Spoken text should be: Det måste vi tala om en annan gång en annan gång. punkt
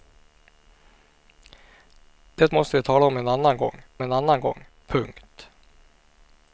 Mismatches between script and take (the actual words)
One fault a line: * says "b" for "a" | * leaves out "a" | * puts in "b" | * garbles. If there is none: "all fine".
all fine